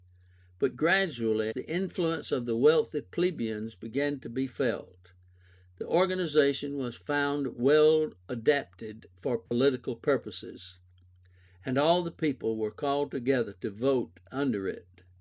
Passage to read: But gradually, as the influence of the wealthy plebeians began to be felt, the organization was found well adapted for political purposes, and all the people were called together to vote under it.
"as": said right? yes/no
no